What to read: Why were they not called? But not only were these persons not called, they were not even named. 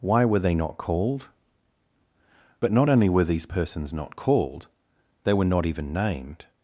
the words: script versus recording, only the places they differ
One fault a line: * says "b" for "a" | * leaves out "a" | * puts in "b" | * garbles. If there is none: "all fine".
all fine